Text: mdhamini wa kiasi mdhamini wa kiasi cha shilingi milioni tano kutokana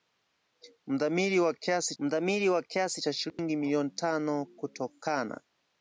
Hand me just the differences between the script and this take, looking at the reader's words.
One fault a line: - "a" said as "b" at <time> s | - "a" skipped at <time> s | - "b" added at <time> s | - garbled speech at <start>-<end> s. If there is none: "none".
none